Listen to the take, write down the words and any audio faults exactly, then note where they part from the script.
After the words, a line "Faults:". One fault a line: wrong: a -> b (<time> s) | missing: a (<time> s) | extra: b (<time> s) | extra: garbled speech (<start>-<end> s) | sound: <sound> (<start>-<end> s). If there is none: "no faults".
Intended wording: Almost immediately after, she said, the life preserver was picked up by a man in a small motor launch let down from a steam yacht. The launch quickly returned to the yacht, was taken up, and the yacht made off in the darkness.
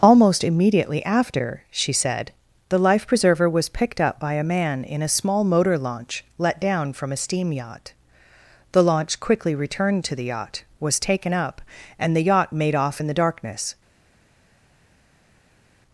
Almost immediately after, she said, the life preserver was picked up by a man in a small motor launch let down from a steam yacht. The launch quickly returned to the yacht, was taken up, and the yacht made off in the darkness.
Faults:
no faults